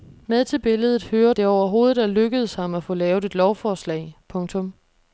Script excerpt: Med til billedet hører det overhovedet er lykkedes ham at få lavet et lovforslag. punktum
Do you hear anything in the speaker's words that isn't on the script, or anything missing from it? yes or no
no